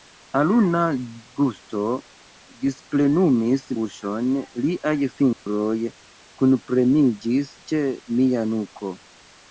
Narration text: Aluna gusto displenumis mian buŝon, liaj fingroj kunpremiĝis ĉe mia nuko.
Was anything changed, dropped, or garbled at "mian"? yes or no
yes